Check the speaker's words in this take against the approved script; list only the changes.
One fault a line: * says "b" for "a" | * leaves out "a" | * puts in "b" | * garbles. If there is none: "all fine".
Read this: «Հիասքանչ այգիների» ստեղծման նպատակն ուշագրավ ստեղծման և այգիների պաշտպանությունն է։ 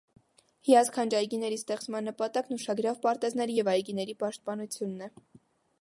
* says "պարտեզների" for "ստեղծման"